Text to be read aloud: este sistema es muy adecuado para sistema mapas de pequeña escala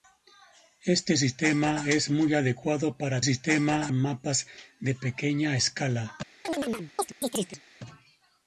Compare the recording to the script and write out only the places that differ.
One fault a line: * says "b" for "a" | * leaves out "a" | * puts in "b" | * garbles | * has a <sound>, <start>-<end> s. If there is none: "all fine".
* has a chirp, 6.4-7.6 s